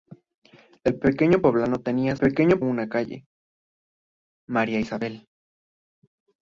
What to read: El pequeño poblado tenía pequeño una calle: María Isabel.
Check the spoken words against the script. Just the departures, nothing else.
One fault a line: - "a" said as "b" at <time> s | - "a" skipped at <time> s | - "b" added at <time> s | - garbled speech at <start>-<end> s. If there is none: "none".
none